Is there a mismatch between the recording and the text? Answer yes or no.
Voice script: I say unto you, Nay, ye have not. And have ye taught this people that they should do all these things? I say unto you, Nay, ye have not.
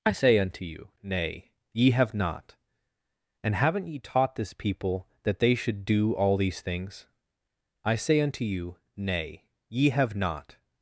yes